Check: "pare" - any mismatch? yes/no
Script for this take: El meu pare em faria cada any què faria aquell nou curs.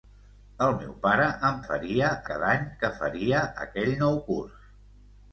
no